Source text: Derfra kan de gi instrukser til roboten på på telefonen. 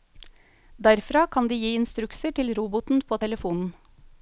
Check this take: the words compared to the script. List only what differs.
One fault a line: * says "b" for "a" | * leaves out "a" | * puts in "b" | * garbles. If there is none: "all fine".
* leaves out "på"